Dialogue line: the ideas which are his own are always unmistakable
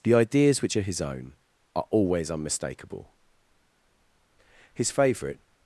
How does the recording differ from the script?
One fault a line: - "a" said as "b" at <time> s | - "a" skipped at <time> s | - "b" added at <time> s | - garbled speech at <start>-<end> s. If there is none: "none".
- "his favourite" added at 4.7 s